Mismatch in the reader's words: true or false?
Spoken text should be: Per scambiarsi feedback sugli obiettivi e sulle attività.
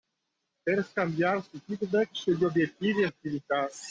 true